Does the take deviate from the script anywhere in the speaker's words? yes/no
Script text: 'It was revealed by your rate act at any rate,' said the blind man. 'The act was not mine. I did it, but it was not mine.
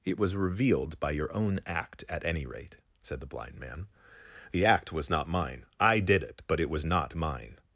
yes